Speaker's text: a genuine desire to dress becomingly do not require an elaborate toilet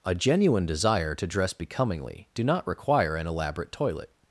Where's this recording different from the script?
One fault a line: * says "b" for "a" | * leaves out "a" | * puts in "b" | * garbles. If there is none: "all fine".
all fine